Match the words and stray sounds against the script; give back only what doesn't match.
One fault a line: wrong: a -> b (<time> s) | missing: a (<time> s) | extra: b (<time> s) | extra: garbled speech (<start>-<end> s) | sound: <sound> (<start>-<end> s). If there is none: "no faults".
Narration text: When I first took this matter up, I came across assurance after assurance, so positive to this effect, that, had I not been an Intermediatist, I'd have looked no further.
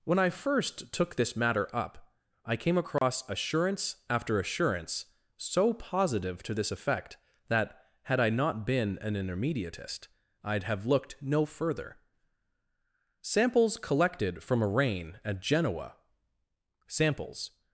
sound: dropout (3.0-3.0 s)
extra: Samples collected from a rain at Genoa samples (13.2 s)